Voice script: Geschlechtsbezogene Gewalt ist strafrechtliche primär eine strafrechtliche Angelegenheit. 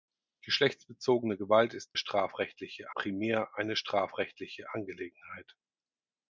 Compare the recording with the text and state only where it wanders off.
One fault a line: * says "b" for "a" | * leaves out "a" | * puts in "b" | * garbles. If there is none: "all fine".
all fine